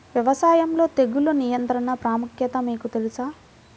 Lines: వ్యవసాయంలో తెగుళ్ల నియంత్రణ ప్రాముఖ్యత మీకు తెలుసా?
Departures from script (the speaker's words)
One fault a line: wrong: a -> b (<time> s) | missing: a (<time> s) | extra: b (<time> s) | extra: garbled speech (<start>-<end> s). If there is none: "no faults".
no faults